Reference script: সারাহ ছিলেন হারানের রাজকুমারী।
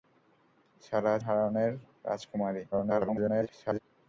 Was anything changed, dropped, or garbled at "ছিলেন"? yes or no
yes